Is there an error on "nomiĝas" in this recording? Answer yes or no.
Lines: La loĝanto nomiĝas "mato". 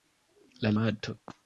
yes